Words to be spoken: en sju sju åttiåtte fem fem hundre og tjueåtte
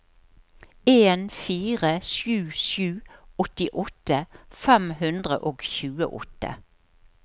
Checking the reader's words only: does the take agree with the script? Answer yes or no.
no